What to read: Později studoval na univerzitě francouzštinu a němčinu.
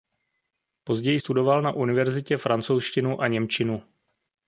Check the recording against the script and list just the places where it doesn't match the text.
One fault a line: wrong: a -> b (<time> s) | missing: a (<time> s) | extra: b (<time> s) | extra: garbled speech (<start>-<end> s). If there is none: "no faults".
no faults